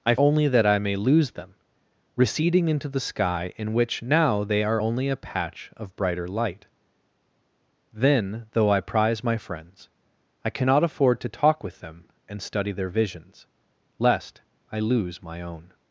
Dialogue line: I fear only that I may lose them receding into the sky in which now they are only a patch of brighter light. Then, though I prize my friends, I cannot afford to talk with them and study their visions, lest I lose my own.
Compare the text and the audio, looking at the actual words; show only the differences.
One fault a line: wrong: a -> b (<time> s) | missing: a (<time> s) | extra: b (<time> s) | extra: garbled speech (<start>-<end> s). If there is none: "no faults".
missing: fear (0.1 s)